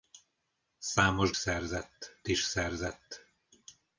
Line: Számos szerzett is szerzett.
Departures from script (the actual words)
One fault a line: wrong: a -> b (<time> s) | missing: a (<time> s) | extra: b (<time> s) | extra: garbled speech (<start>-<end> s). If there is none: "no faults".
no faults